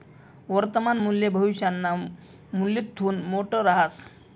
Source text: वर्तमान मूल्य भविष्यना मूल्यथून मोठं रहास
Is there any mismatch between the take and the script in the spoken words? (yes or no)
no